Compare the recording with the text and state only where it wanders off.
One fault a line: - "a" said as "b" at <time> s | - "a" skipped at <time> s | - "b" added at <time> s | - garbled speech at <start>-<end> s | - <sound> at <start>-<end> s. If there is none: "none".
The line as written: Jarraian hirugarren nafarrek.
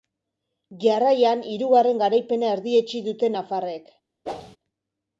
- "garaipena erdietsi dute" added at 2.0 s
- whoosh at 4.3-4.6 s